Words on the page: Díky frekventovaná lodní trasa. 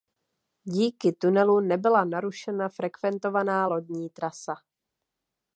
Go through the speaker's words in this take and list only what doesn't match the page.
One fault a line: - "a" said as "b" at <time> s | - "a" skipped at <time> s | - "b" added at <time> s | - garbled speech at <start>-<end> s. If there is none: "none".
- "tunelu nebyla narušena" added at 1.1 s